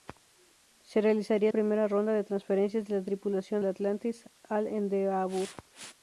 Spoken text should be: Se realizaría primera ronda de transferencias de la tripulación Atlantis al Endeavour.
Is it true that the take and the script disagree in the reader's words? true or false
false